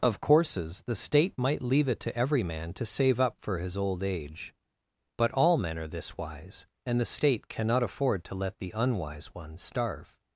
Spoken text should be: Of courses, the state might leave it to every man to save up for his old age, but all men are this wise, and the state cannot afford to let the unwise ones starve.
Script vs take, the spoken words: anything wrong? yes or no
no